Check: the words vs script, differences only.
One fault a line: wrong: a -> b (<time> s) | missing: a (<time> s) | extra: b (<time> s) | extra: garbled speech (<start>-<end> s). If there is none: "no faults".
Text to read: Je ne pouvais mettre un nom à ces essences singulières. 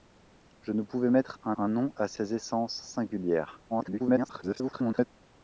extra: un (1.6 s)
extra: garbled speech (3.7-5.1 s)